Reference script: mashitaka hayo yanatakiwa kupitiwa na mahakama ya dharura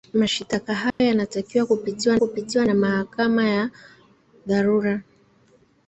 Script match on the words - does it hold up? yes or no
no